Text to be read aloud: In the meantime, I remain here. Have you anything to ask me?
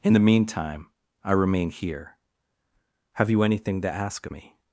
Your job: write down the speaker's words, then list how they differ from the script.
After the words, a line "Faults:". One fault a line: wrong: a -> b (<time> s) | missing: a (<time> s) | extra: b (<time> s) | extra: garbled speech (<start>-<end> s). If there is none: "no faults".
In the meantime, I remain here. Have you anything to ask me?
Faults:
no faults